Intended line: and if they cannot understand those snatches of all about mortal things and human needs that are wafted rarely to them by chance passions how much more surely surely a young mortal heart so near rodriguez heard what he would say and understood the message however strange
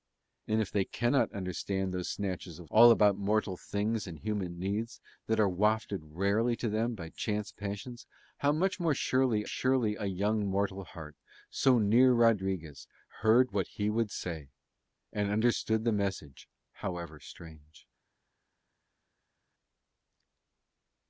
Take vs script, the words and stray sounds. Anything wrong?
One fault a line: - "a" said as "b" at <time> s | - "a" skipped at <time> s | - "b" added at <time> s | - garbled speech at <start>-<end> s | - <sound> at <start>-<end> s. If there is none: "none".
none